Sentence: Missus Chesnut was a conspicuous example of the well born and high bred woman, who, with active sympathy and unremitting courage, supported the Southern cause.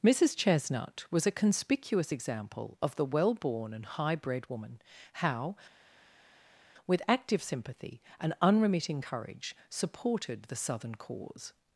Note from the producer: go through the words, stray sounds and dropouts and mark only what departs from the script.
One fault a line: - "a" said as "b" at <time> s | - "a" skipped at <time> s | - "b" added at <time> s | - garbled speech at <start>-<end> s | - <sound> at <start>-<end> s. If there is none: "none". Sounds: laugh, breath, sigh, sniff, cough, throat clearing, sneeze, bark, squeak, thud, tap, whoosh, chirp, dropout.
- "who" said as "how" at 5.1 s